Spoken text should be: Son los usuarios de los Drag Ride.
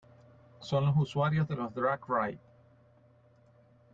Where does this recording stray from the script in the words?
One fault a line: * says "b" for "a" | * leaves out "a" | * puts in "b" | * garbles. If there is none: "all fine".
all fine